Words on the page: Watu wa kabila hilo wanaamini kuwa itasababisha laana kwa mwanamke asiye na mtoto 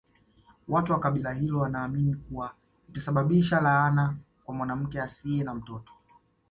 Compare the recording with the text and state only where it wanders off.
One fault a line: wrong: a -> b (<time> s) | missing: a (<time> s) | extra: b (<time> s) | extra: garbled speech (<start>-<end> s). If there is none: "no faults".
no faults